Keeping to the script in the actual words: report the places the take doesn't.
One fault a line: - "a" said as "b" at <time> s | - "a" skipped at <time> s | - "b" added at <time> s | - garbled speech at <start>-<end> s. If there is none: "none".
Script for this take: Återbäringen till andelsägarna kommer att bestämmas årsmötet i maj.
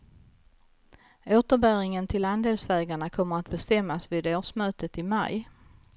- "vid" added at 4.1 s